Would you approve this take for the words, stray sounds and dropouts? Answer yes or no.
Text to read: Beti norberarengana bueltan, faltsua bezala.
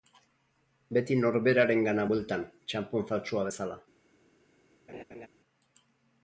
no